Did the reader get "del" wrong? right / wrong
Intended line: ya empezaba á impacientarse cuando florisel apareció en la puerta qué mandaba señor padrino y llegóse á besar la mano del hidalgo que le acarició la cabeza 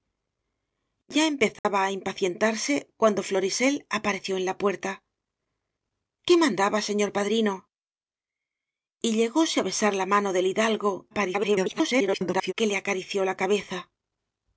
right